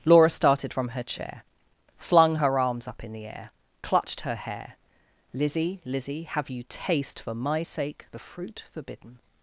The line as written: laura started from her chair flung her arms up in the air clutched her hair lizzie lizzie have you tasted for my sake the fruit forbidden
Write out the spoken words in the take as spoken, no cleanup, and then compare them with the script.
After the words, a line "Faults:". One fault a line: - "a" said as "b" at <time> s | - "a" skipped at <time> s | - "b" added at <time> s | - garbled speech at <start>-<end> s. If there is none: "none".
laura started from her chair flung her arms up in the air clutched her hair lizzie lizzie have you taste for my sake the fruit forbidden
Faults:
- "tasted" said as "taste" at 6.7 s